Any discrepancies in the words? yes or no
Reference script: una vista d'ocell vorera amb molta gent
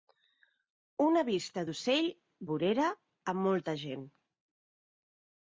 no